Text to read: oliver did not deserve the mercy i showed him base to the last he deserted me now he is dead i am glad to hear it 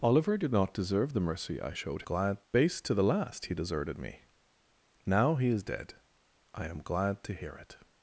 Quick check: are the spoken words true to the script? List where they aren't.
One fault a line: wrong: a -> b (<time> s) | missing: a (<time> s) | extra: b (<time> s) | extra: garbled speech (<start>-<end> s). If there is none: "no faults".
wrong: him -> glad (2.0 s)